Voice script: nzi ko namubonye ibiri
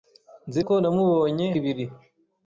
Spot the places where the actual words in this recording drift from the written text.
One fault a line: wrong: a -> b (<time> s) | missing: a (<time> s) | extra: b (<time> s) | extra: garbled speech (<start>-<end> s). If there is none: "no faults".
no faults